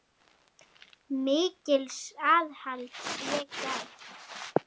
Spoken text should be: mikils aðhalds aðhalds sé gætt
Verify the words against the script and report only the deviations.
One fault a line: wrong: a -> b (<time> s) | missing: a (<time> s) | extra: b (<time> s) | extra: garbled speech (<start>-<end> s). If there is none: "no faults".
missing: aðhalds (3.0 s)